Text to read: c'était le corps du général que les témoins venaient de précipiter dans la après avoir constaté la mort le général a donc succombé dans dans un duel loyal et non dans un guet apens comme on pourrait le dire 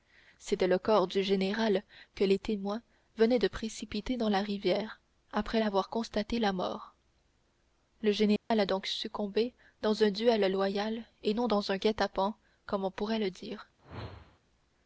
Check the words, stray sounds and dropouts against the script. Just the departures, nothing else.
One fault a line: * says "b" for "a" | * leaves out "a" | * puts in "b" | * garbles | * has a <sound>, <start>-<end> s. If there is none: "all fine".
* puts in "rivière"
* has a dropout, 8.4-8.5 s
* leaves out "dans"
* has a whoosh, 13.8-14.4 s